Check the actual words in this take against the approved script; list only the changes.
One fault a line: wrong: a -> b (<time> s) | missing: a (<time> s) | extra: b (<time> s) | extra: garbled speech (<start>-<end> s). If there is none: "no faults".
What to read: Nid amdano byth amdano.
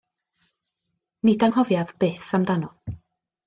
wrong: amdano -> anghofiaf (1.5 s)